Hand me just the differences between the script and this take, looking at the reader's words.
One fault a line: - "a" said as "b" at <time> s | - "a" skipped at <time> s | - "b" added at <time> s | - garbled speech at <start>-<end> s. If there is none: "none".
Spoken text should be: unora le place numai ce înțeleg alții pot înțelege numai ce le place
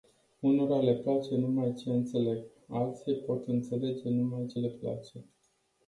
none